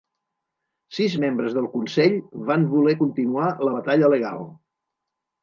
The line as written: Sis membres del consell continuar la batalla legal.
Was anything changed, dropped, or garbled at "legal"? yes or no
no